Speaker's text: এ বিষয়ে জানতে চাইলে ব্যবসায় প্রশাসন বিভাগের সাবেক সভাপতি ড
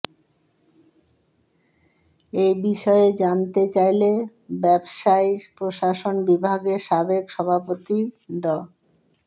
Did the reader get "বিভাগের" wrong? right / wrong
right